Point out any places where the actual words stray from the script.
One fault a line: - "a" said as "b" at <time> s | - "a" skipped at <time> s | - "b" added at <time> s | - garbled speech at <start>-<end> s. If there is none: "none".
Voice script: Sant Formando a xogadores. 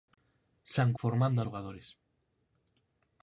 none